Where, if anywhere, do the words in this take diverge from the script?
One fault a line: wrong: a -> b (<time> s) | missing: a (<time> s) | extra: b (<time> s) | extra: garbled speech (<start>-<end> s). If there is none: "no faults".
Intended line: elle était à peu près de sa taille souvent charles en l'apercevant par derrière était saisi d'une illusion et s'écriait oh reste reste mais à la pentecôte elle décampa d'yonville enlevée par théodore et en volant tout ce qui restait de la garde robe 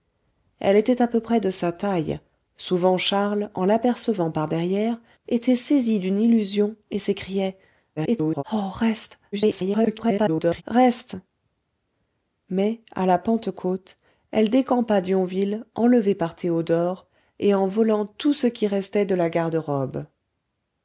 extra: garbled speech (8.0-8.4 s)
extra: garbled speech (9.3-10.6 s)